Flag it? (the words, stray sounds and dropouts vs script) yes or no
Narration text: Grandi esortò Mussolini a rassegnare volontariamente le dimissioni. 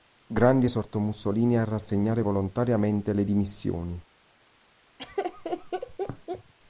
yes